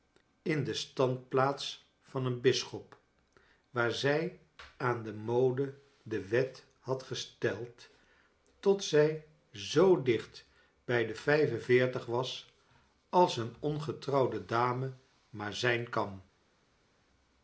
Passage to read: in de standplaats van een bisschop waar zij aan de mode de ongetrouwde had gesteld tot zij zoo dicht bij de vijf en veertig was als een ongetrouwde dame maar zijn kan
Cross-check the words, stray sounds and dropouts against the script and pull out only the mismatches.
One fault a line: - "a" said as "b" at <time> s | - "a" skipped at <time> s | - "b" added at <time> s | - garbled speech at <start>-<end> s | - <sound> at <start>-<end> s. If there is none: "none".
- "ongetrouwde" said as "wet" at 6.3 s